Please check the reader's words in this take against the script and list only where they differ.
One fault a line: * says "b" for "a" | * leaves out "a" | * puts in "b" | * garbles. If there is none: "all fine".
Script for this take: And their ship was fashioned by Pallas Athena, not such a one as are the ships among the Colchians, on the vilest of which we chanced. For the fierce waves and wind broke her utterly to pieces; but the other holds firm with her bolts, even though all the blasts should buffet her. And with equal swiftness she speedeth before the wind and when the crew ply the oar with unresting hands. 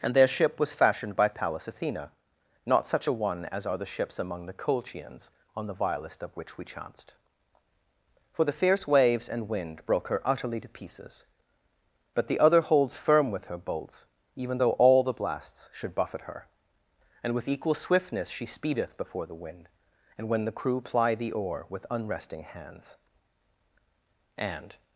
* puts in "And"